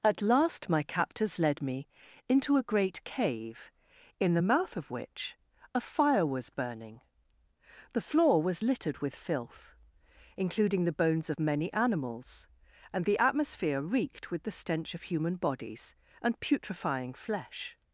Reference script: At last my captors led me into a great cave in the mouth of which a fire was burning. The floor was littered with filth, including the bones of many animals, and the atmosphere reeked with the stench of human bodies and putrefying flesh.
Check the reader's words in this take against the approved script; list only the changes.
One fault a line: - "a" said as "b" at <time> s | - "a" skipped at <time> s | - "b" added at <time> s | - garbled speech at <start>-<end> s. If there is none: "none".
none